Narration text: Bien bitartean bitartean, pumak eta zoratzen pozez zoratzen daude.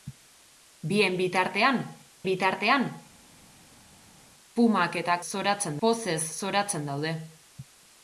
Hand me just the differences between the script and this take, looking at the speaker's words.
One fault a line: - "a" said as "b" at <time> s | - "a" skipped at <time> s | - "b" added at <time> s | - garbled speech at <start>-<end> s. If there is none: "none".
none